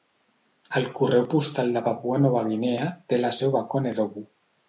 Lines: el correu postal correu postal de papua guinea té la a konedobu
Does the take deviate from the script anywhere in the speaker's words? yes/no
yes